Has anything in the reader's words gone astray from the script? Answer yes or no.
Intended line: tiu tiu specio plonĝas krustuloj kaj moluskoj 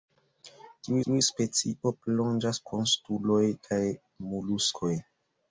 no